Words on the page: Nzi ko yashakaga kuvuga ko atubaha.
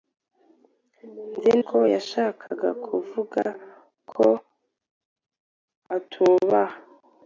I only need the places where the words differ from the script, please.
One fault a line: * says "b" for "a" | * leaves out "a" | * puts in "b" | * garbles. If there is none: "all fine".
all fine